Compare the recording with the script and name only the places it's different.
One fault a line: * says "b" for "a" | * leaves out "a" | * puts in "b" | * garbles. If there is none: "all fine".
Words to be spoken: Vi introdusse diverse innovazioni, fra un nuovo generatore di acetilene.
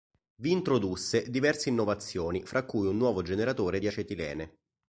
* puts in "cui"